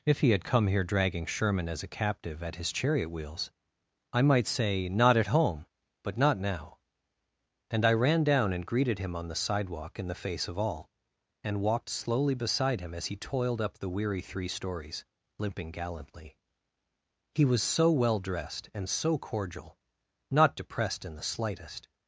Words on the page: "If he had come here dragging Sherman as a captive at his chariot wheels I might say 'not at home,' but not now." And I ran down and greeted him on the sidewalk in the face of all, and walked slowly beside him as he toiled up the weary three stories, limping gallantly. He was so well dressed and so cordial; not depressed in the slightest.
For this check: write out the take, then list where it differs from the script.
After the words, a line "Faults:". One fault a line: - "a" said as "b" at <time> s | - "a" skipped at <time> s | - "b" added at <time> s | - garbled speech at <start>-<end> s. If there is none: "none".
"If he had come here dragging Sherman as a captive at his chariot wheels I might say 'not at home,' but not now." And I ran down and greeted him on the sidewalk in the face of all, and walked slowly beside him as he toiled up the weary three stories, limping gallantly. He was so well dressed and so cordial; not depressed in the slightest.
Faults:
none